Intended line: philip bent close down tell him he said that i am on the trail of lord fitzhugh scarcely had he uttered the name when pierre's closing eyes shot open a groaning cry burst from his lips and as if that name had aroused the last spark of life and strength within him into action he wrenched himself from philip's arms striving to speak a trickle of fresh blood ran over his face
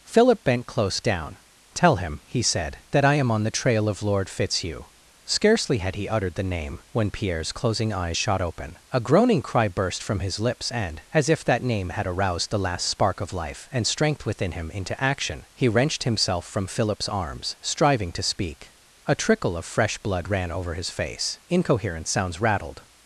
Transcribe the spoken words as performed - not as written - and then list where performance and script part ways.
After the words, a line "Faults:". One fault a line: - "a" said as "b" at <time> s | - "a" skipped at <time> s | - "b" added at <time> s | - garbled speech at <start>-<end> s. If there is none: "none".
philip bent close down tell him he said that i am on the trail of lord fitzhugh scarcely had he uttered the name when pierre's closing eyes shot open a groaning cry burst from his lips and as if that name had aroused the last spark of life and strength within him into action he wrenched himself from philip's arms striving to speak a trickle of fresh blood ran over his face incoherent sounds rattled
Faults:
- "incoherent sounds rattled" added at 21.5 s